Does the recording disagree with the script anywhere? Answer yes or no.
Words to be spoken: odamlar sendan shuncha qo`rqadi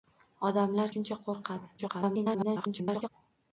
yes